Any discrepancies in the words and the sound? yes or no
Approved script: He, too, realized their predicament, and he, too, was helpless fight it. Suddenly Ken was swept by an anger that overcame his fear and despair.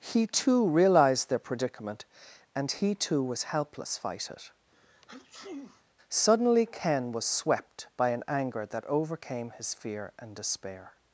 yes